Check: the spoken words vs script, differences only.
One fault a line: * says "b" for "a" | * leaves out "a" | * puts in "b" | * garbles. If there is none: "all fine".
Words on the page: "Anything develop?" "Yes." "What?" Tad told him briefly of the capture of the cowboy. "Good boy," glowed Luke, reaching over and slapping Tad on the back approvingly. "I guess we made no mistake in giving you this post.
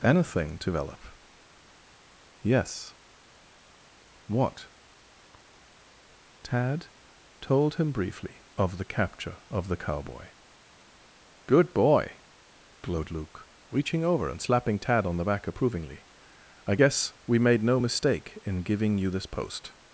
all fine